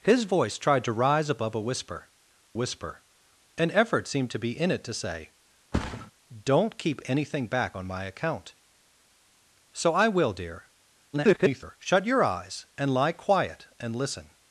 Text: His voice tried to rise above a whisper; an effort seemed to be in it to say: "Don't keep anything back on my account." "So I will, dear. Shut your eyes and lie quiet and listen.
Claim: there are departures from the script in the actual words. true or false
true